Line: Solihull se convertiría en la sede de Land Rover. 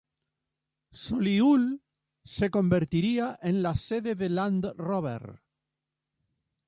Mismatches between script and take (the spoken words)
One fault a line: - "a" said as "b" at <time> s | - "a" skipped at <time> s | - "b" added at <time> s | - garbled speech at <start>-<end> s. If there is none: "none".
none